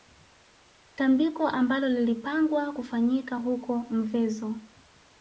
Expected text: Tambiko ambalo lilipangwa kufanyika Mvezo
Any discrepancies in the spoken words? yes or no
yes